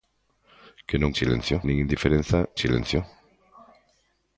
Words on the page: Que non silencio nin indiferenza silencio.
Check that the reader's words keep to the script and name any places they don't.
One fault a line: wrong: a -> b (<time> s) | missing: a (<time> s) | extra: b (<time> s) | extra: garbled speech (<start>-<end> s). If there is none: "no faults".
no faults